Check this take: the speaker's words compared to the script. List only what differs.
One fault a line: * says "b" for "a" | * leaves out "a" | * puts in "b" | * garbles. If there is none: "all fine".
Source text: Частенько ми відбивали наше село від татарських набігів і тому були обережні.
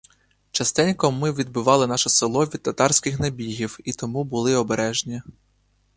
all fine